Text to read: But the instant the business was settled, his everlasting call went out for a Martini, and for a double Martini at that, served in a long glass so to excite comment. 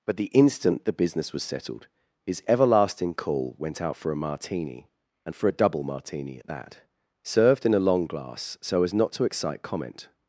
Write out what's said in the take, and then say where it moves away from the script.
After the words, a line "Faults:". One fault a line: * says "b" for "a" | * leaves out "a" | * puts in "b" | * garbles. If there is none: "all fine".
But the instant the business was settled, his everlasting call went out for a Martini, and for a double Martini at that, served in a long glass so as not to excite comment.
Faults:
* puts in "as not"